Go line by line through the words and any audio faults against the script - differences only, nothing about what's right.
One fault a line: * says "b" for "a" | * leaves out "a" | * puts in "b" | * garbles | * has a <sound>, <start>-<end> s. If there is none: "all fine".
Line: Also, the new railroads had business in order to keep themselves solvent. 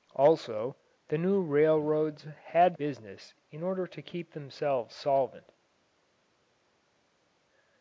all fine